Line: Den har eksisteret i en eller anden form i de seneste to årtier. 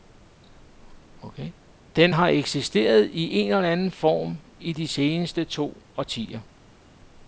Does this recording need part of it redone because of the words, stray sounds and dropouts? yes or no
no